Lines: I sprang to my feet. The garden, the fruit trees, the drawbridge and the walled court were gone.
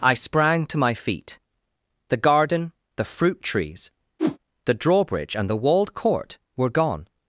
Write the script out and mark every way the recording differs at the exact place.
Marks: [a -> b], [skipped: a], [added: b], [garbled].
I sprang to my feet. The garden, the fruit trees, the drawbridge and the walled court were gone.